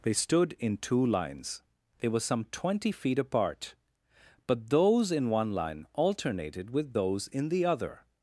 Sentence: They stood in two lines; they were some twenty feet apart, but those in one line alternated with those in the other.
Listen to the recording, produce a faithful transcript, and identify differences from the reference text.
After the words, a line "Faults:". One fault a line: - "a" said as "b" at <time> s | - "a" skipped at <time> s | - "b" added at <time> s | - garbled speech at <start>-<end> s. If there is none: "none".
They stood in two lines; they were some twenty feet apart, but those in one line alternated with those in the other.
Faults:
none